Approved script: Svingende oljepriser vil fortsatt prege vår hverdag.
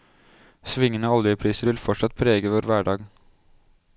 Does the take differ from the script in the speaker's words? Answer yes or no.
no